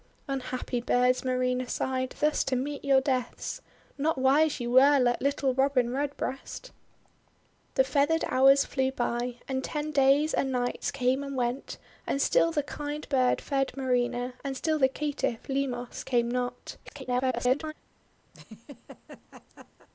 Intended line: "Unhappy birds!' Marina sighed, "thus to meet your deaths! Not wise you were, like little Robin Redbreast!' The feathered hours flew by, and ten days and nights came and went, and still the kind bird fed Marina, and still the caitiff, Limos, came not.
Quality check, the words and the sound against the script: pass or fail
fail